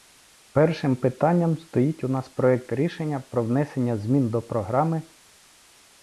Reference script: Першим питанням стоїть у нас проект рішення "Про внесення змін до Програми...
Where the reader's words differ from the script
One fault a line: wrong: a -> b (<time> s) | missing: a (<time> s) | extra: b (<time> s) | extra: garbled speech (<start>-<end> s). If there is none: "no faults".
no faults